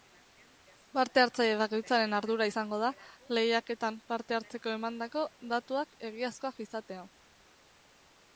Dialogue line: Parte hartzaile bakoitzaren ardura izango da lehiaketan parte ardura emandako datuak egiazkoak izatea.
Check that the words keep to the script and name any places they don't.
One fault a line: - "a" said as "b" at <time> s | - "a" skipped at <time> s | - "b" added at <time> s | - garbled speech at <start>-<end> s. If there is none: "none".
- "ardura" said as "hartzeko" at 4.4 s